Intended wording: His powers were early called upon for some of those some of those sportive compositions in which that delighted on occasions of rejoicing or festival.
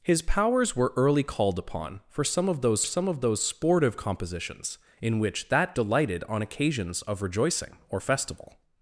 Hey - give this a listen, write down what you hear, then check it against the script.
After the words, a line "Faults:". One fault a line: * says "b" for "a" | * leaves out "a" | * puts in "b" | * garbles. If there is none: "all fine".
His powers were early called upon for some of those some of those sportive compositions in which that delighted on occasions of rejoicing or festival.
Faults:
all fine